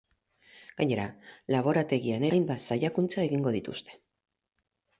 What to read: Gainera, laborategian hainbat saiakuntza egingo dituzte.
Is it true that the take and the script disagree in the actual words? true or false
false